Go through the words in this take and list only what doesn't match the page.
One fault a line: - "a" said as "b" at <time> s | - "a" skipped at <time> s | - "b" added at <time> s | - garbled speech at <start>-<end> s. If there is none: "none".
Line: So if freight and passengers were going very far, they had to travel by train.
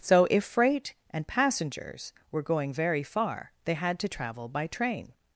none